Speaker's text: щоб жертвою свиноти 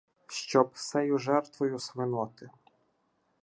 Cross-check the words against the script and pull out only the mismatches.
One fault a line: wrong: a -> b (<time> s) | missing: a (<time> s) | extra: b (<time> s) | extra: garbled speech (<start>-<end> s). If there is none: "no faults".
extra: сею (0.7 s)